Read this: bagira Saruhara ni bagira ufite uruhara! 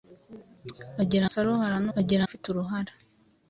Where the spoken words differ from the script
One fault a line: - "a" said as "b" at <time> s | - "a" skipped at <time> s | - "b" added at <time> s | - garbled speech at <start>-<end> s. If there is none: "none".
none